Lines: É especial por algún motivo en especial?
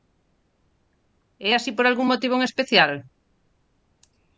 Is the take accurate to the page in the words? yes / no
no